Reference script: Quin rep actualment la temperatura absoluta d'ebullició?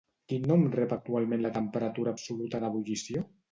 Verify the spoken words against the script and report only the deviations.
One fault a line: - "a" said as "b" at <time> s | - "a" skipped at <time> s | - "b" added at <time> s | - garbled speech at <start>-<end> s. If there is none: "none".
- "nom" added at 0.5 s